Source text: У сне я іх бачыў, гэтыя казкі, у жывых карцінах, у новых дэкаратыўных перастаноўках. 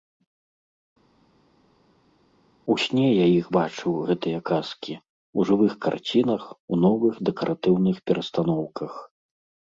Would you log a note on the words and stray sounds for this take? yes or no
no